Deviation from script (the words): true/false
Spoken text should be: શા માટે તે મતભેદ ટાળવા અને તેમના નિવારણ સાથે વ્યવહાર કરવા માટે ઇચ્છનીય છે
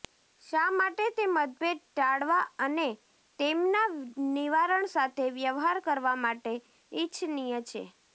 false